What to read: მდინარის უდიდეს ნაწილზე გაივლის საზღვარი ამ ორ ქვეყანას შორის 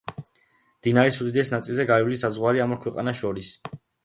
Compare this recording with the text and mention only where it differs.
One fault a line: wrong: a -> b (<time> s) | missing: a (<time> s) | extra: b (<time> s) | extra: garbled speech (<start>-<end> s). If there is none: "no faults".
no faults